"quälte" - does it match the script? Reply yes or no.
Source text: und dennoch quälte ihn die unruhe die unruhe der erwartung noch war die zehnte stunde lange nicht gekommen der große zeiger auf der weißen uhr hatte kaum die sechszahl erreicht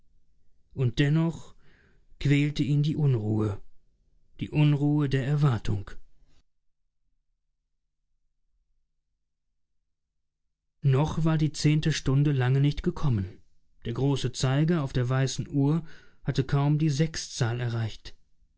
yes